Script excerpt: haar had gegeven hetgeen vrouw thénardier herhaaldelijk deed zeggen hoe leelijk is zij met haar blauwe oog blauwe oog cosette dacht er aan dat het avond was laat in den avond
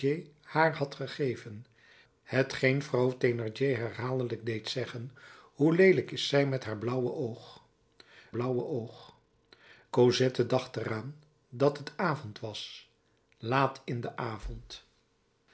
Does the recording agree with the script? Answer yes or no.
yes